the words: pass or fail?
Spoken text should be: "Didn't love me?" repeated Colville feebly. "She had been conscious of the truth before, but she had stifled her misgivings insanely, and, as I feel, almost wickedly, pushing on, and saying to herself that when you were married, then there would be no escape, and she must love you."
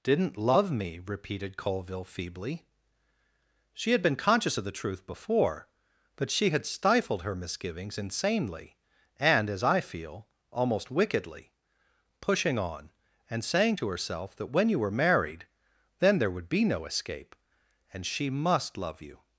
pass